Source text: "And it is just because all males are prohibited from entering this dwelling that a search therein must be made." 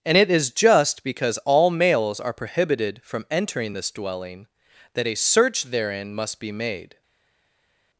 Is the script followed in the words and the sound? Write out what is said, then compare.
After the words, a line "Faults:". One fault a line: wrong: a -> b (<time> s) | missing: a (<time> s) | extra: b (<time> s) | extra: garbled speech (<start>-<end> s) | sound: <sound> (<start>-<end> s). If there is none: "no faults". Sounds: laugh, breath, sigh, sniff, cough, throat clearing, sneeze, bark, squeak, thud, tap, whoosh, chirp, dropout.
"And it is just because all males are prohibited from entering this dwelling that a search therein must be made."
Faults:
no faults